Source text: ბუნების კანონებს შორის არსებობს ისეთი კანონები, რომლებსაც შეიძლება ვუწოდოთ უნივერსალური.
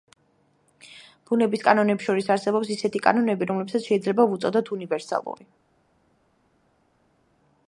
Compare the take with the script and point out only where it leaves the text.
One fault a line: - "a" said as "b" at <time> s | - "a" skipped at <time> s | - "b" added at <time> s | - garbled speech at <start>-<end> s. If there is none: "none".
none